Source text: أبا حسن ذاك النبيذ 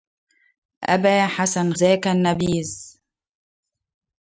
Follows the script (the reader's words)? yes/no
yes